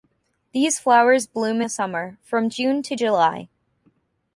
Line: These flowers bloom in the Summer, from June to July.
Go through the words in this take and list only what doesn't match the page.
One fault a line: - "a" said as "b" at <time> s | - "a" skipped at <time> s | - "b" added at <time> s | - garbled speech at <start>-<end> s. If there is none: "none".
- "in" skipped at 1.6 s